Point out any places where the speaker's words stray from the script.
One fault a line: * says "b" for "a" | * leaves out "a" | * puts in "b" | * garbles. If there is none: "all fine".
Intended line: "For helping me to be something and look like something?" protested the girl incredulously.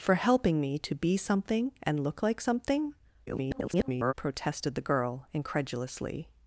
* garbles